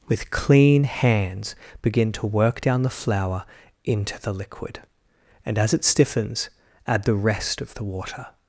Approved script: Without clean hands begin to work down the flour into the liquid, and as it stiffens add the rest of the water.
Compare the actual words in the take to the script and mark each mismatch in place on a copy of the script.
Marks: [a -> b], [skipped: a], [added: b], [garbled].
[Without -> With] clean hands begin to work down the flour into the liquid, and as it stiffens add the rest of the water.